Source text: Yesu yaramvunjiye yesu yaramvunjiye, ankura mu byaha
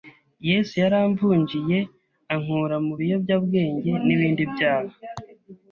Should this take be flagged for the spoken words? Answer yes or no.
yes